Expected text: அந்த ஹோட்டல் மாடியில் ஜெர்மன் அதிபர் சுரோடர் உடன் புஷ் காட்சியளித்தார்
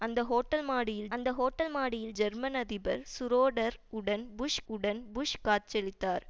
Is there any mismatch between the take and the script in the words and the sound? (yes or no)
yes